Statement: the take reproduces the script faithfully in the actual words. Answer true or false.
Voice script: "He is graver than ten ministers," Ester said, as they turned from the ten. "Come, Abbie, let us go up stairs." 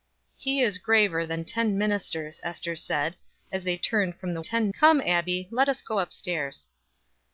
true